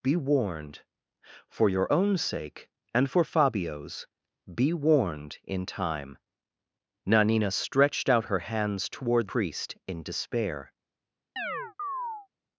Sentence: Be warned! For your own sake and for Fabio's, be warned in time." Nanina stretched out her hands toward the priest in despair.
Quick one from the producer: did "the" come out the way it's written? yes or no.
no